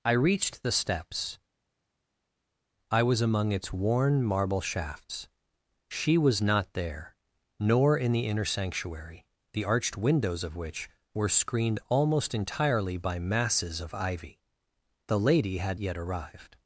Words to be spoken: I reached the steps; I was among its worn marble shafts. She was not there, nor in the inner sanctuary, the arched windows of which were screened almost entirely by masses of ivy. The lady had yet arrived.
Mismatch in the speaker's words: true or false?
false